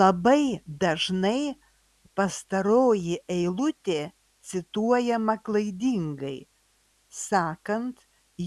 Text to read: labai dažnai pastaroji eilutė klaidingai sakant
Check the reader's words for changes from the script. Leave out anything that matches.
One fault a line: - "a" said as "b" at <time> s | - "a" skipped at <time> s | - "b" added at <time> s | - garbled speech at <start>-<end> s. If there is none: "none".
- "cituojama" added at 4.5 s